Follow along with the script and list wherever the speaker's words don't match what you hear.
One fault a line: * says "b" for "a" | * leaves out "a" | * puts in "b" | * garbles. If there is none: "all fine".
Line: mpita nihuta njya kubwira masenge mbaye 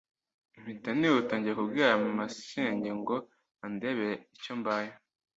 * puts in "ngo andebere icyo"